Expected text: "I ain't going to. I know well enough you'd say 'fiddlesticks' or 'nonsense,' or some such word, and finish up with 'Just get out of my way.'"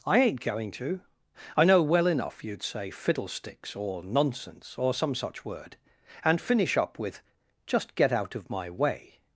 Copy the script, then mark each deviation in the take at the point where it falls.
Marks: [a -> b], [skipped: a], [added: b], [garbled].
"I ain't going to. I know well enough you'd say 'fiddlesticks' or 'nonsense,' or some such word, and finish up with 'Just get out of my way.'"